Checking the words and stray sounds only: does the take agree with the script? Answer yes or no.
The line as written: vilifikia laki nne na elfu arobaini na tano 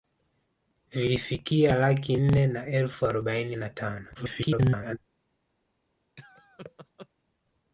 no